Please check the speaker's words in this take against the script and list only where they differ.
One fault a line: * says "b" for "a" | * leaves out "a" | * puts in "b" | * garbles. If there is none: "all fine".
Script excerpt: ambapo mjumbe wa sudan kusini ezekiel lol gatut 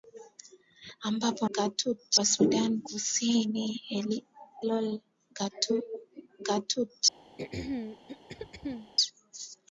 * says "gatut" for "mjumbe"
* leaves out "ezekiel"